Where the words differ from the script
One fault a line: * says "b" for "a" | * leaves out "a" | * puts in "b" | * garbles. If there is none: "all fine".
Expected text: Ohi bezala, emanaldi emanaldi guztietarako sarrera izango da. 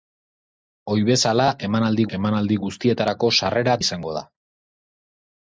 all fine